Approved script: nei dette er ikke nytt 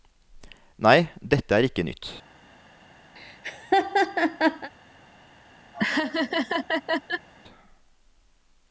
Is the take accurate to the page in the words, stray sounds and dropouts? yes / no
no